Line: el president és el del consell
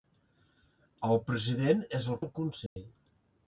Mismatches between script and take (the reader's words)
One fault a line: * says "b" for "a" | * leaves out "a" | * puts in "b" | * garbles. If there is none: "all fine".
all fine